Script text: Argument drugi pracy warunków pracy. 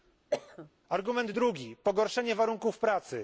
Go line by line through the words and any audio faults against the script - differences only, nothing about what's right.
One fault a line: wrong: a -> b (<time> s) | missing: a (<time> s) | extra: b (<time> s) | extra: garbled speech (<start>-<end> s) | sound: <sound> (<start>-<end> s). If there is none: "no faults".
sound: cough (0.3-0.7 s)
wrong: pracy -> pogorszenie (1.8 s)